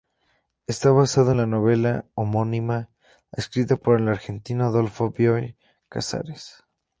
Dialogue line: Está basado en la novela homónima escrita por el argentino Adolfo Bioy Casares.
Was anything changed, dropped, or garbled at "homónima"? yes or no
no